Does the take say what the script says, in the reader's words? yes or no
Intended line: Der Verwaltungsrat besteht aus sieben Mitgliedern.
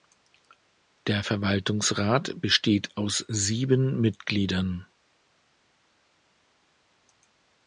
yes